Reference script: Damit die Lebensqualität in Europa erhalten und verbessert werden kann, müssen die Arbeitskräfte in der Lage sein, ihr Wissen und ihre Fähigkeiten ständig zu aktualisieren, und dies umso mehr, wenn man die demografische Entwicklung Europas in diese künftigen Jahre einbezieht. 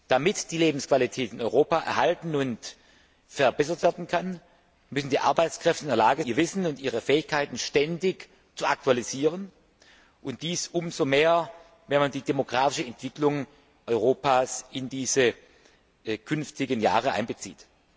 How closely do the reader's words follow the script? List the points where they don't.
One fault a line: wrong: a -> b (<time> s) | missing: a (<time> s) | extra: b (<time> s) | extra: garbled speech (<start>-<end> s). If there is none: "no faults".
missing: sein (6.2 s)